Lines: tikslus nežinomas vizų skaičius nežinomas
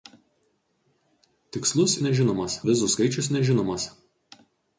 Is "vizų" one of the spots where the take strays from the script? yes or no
no